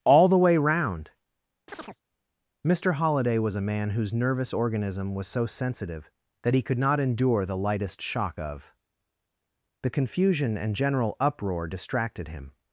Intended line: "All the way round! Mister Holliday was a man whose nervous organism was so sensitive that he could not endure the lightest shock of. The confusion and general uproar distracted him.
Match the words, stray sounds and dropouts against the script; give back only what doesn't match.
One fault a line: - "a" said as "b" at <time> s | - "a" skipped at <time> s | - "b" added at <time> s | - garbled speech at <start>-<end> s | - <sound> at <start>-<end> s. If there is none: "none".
- chirp at 1.7-2.0 s